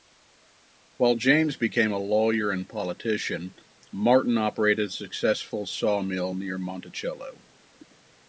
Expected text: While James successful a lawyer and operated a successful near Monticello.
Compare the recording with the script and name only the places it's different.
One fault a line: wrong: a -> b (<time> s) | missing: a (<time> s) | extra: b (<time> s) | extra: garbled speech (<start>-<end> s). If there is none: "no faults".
wrong: successful -> became (1.6 s)
extra: politician Martin (2.7 s)
extra: sawmill (5.7 s)